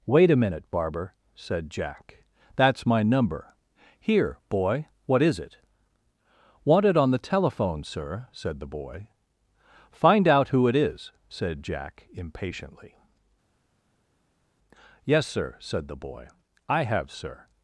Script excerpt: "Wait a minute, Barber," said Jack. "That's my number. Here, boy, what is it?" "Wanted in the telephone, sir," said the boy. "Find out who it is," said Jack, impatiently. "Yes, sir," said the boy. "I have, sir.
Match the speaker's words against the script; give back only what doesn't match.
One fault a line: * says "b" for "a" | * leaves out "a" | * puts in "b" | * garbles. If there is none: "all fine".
* says "on" for "in"